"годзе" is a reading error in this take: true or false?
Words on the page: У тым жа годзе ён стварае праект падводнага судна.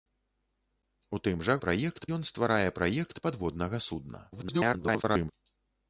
true